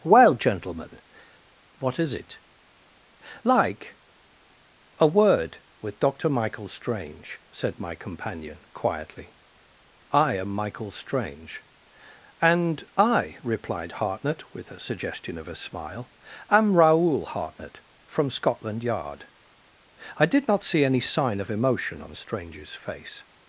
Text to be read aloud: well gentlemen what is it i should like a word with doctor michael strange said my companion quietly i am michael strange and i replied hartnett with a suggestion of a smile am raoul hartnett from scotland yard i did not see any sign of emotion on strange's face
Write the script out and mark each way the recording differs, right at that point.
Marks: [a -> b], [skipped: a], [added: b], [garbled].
well gentlemen what is it [skipped: i should] like a word with doctor michael strange said my companion quietly i am michael strange and i replied hartnett with a suggestion of a smile am raoul hartnett from scotland yard i did not see any sign of emotion on strange's face